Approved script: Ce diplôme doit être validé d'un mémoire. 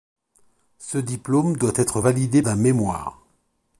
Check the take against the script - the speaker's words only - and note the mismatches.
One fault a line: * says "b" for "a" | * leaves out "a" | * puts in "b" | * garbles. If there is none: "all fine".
all fine